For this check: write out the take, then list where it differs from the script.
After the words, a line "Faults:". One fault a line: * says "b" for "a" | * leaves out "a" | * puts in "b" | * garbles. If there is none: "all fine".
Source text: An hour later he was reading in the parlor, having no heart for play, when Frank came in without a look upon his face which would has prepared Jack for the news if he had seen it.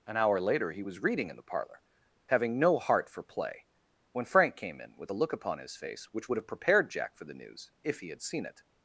An hour later he was reading in the parlor, having no heart for play, when Frank came in with a look upon his face which would have prepared Jack for the news if he had seen it.
Faults:
* says "with" for "without"
* says "have" for "has"